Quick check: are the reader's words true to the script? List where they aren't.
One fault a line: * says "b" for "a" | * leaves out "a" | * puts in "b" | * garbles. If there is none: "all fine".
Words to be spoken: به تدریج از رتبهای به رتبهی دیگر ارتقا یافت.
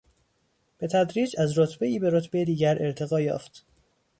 all fine